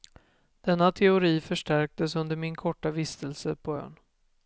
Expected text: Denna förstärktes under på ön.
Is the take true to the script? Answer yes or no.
no